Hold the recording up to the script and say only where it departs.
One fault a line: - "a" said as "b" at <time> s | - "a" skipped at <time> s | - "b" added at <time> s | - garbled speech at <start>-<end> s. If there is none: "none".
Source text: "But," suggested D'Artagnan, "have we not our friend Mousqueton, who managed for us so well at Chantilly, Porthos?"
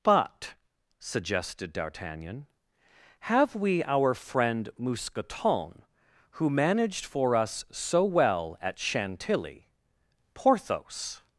- "not" skipped at 3.8 s